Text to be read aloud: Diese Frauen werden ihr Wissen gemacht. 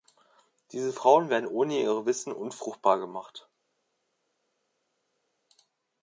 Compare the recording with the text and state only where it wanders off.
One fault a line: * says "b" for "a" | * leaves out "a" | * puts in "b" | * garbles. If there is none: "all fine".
* puts in "ohne"
* puts in "unfruchtbar"